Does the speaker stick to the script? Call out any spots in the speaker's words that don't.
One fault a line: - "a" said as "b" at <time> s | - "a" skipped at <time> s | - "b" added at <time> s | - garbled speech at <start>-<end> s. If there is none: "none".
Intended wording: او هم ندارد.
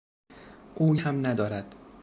none